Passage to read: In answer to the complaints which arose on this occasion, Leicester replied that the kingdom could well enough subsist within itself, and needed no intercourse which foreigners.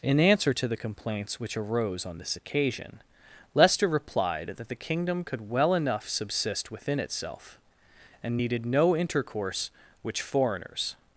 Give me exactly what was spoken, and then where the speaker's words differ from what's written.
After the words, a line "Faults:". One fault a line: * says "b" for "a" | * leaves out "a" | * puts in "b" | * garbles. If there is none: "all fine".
In answer to the complaints which arose on this occasion, Leicester replied that the kingdom could well enough subsist within itself, and needed no intercourse which foreigners.
Faults:
all fine